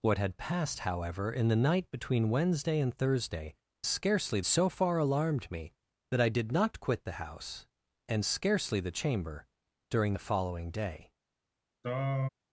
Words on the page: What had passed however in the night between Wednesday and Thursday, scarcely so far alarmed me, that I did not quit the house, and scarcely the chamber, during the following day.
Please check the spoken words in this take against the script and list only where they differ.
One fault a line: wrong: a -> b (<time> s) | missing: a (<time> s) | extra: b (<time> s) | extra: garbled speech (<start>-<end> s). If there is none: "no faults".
no faults